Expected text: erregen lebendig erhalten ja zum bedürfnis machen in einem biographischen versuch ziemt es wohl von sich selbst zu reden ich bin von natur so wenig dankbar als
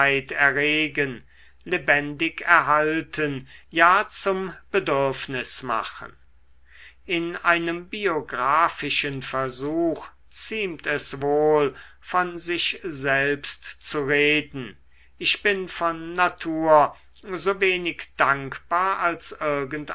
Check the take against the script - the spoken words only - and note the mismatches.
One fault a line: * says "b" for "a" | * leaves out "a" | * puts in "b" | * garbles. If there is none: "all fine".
all fine